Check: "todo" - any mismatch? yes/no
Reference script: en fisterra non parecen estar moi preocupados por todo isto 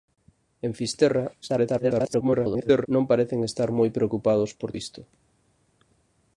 yes